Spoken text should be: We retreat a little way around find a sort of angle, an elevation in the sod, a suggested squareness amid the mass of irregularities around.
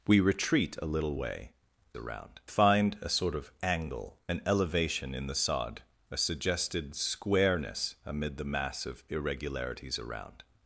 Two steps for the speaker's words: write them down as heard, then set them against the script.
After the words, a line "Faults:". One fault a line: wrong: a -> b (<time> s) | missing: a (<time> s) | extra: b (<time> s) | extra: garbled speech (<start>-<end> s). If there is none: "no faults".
We retreat a little way around find a sort of angle, an elevation in the sod, a suggested squareness amid the mass of irregularities around.
Faults:
no faults